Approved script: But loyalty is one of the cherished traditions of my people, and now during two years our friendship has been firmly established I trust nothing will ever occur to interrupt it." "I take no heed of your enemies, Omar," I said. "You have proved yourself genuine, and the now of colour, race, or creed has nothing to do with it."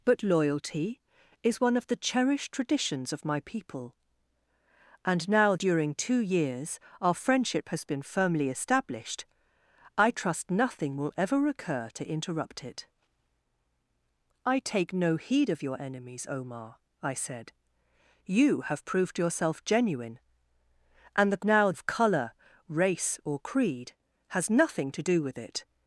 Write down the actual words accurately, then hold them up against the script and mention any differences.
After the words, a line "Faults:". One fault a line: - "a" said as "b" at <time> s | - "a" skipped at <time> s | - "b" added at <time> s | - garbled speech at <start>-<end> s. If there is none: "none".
But loyalty is one of the cherished traditions of my people, and now during two years our friendship has been firmly established I trust nothing will ever occur to interrupt it." "I take no heed of your enemies, Omar," I said. "You have proved yourself genuine, and the now of colour, race, or creed has nothing to do with it."
Faults:
none